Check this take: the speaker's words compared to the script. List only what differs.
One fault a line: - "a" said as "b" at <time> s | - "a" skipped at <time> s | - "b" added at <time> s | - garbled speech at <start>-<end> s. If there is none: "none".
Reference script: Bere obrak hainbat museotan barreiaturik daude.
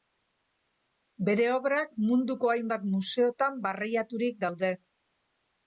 - "munduko" added at 2.1 s